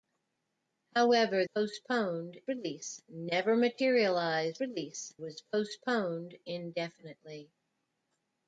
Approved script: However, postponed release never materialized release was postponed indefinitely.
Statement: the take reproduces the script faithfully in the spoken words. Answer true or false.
true